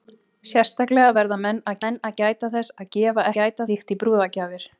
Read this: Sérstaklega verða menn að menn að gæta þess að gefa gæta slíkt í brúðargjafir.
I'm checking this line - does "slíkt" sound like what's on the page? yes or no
yes